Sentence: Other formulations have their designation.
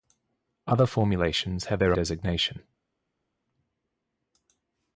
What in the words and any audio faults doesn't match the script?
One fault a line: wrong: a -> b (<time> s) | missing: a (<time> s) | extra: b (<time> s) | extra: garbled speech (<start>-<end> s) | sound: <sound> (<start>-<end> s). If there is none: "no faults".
no faults